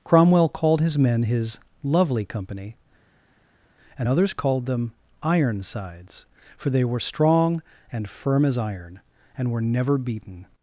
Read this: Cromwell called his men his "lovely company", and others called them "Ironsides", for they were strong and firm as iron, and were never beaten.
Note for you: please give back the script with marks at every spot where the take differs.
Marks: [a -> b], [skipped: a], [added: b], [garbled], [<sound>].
Cromwell called his men his "lovely company", and others called them "Ironsides", for they were strong and firm as iron, and were never beaten.